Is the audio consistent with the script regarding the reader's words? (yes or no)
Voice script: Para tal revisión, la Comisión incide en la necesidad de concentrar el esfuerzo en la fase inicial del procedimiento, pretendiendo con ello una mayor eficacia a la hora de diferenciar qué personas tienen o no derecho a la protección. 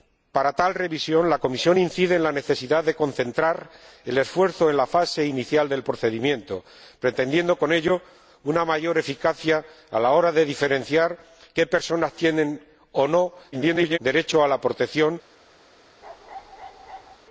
no